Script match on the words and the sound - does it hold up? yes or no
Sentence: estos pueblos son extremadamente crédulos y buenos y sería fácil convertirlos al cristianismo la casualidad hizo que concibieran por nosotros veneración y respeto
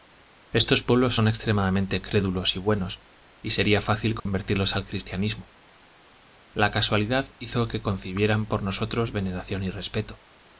no